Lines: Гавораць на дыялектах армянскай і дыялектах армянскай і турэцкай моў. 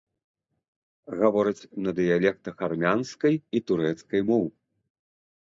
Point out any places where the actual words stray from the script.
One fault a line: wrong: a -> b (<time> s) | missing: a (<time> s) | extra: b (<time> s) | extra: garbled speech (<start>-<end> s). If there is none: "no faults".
missing: дыялектах армянскай і (3.6 s)